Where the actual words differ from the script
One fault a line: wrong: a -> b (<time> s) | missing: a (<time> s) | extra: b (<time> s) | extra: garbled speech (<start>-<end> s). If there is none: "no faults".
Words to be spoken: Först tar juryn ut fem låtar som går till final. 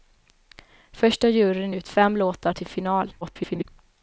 missing: som går (2.5 s)
extra: garbled speech (3.2-3.6 s)